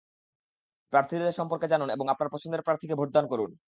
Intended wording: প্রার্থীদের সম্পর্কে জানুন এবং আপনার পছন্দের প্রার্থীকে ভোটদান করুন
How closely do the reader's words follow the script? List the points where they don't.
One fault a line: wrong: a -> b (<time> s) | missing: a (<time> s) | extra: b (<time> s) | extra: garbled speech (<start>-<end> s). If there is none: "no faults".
no faults